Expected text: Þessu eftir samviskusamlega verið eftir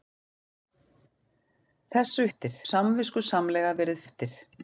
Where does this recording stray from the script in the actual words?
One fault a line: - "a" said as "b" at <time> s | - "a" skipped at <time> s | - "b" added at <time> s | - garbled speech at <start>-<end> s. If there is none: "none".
none